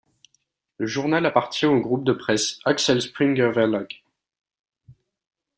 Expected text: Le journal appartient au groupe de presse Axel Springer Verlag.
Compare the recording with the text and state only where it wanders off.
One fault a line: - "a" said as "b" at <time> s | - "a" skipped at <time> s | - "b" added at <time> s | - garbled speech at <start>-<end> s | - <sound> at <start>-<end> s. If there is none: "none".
none